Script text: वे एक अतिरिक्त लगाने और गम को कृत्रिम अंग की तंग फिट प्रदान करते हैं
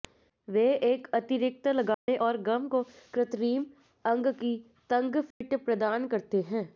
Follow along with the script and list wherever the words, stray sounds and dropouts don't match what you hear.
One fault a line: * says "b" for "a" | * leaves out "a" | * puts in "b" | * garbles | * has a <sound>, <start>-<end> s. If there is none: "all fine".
* has a dropout, 1.9-2.1 s
* has a dropout, 5.3-5.4 s